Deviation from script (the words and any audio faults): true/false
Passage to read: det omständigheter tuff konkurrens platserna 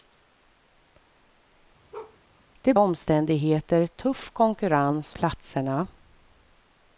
true